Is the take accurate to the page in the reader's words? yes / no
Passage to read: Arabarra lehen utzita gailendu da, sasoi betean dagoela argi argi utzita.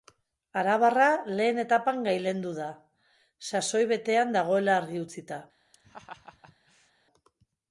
no